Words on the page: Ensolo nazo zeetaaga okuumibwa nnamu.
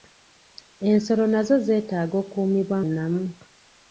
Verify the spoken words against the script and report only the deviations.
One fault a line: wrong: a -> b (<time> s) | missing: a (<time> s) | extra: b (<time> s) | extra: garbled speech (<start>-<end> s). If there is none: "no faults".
no faults